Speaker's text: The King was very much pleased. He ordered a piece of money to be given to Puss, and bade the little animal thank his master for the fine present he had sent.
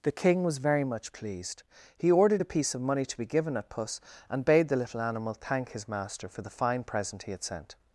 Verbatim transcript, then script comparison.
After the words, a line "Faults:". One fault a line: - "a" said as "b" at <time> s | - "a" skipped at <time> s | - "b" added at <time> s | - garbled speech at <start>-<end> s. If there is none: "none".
The King was very much pleased. He ordered a piece of money to be given at Puss, and bade the little animal thank his master for the fine present he had sent.
Faults:
- "to" said as "at" at 3.6 s